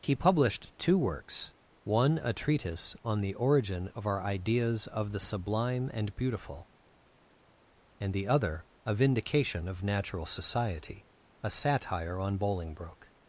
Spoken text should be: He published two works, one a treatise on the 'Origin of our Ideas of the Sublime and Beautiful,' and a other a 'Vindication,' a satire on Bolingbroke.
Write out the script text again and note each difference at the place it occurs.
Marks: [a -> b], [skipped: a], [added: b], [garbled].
He published two works, one a treatise on the 'Origin of our Ideas of the Sublime and Beautiful,' and [a -> the] other a 'Vindication,' [added: of Natural Society] a satire on Bolingbroke.